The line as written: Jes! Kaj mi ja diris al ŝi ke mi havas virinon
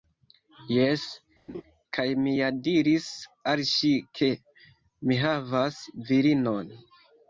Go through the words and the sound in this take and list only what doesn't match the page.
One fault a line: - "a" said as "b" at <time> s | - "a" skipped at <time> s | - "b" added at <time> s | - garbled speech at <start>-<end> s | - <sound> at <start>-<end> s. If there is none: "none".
- laugh at 1.5-1.6 s